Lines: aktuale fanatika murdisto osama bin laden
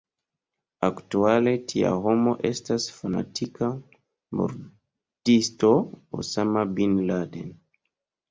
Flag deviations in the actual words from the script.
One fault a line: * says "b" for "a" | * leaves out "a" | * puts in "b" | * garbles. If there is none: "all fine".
* puts in "tia homo estas"